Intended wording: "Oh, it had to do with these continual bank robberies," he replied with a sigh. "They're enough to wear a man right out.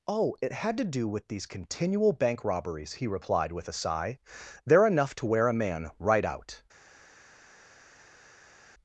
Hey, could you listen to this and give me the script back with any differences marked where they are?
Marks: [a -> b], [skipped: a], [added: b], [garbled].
"Oh, it had to do with these continual bank robberies," he replied with a sigh. "They're enough to wear a man right out.